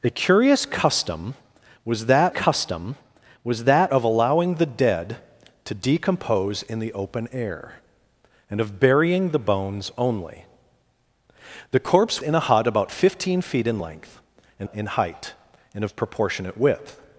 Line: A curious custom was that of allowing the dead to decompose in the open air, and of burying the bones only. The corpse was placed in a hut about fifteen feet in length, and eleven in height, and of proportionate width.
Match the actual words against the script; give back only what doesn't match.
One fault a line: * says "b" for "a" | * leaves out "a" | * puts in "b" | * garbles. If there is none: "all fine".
* puts in "custom was that"
* leaves out "was placed"
* leaves out "eleven"